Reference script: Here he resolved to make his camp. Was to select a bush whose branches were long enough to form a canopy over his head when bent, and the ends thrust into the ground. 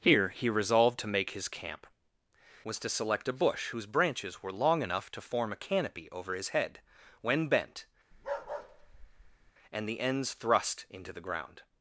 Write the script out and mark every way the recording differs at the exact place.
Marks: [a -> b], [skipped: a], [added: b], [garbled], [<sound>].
Here he resolved to make his camp. Was to select a bush whose branches were long enough to form a canopy over his head when bent, [bark] and the ends thrust into the ground.